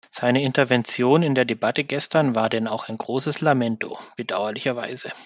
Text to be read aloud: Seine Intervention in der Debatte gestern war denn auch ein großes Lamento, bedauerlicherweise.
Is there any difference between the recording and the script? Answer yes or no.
no